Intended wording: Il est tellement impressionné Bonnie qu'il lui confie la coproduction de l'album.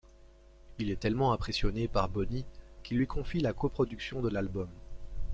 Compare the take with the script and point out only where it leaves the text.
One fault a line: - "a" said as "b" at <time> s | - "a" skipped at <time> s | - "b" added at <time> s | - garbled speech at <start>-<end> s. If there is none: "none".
- "par" added at 1.9 s